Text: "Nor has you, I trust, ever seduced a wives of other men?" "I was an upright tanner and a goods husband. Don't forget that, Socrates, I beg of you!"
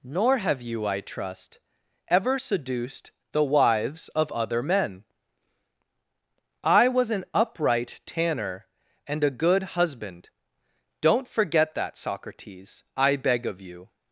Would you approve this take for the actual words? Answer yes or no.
no